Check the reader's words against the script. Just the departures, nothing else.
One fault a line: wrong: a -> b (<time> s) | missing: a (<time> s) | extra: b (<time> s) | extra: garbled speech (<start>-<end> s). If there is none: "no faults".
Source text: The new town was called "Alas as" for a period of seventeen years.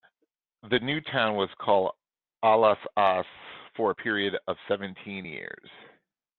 no faults